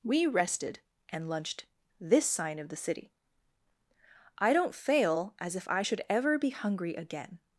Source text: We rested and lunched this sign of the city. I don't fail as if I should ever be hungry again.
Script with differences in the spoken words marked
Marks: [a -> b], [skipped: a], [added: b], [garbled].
We rested and lunched this sign of the city. I don't fail as if I should ever be hungry again.